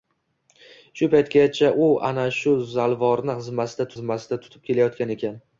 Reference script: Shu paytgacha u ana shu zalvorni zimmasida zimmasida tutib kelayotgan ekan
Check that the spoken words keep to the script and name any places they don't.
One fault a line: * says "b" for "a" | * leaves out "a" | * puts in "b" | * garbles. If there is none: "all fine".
all fine